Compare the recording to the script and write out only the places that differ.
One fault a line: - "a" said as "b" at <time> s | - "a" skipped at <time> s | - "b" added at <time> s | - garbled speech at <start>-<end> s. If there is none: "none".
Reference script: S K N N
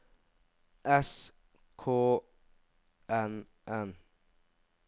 none